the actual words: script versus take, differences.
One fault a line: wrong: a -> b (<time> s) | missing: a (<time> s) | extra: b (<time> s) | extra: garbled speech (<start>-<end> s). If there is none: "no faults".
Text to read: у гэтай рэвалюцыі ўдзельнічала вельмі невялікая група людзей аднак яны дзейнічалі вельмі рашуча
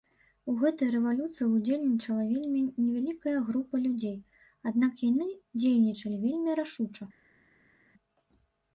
no faults